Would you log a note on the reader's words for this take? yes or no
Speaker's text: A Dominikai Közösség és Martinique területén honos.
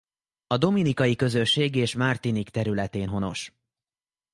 no